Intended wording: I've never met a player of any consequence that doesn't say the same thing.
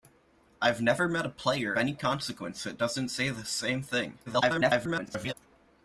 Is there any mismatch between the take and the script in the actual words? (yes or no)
yes